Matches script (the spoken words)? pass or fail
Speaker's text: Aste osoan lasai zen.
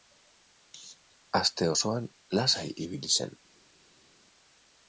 fail